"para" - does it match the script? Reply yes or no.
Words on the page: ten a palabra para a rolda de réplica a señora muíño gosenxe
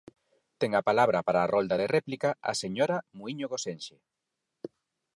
yes